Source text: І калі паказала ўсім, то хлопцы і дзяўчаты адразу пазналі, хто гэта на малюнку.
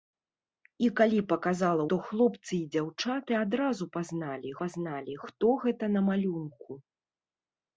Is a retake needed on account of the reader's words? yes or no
yes